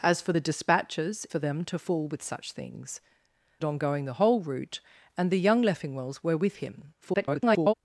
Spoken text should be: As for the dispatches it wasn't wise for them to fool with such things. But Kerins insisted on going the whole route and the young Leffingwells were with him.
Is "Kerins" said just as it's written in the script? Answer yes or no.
no